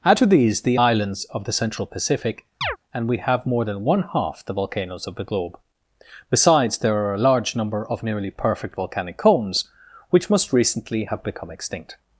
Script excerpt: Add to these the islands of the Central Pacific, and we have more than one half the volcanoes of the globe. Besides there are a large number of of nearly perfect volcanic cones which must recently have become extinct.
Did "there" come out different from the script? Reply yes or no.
no